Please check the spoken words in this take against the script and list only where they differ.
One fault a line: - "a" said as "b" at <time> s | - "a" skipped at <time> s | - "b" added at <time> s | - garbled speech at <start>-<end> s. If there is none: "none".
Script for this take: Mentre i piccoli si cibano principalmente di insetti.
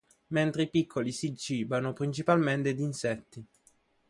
none